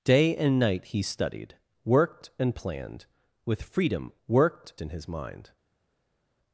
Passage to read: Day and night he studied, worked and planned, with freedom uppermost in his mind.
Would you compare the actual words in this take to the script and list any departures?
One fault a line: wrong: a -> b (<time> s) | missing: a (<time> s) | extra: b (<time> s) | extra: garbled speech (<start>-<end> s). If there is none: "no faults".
wrong: uppermost -> worked (4.3 s)